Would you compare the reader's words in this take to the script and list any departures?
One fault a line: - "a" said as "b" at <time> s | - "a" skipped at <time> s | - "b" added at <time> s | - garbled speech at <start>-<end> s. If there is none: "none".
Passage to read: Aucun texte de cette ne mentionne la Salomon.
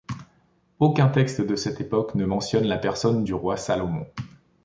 - "époque" added at 1.8 s
- "personne du roi" added at 2.8 s